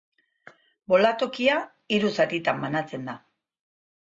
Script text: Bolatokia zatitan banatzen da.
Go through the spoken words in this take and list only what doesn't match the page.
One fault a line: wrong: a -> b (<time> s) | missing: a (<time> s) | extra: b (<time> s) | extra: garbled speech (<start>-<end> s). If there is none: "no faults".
extra: hiru (2.0 s)